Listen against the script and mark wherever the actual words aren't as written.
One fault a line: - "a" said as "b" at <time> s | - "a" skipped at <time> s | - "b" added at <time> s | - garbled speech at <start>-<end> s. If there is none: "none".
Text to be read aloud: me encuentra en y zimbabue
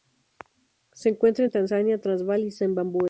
- "me" said as "se" at 0.9 s
- "tanzania transvaal" added at 1.5 s